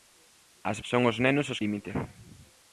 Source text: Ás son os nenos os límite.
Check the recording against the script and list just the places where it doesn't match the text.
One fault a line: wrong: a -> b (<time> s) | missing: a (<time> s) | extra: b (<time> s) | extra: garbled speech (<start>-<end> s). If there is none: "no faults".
no faults